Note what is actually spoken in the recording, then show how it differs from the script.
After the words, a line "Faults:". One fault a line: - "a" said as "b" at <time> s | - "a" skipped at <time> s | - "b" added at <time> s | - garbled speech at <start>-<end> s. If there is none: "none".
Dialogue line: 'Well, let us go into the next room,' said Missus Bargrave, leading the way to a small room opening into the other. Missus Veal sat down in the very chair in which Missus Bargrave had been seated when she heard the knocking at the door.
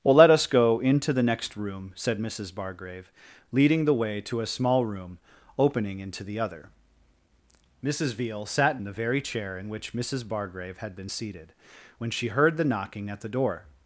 'Well, let us go into the next room,' said Missus Bargrave, leading the way to a small room opening into the other. Missus Veal sat in the very chair in which Missus Bargrave had been seated when she heard the knocking at the door.
Faults:
- "down" skipped at 8.8 s